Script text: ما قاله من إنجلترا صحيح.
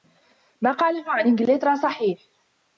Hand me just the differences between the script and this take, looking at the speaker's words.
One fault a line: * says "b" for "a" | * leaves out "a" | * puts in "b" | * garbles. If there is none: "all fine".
* says "عن" for "من"